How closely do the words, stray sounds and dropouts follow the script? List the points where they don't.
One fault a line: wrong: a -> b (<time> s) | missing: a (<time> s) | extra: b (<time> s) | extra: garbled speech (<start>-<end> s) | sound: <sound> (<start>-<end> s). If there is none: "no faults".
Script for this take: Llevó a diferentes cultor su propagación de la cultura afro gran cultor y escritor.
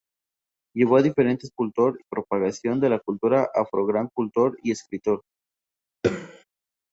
sound: throat clearing (6.0-6.4 s)